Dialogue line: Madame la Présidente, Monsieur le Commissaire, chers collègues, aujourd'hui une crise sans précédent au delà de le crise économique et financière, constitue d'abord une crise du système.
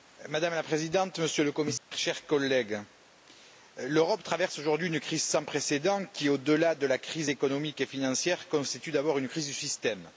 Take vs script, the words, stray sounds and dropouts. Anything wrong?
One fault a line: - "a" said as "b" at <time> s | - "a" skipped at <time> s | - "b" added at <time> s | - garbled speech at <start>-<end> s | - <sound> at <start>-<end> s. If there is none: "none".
- dropout at 1.8-1.9 s
- "l'Europe traverse" added at 3.8 s
- "qui" added at 6.1 s
- "le" said as "la" at 6.9 s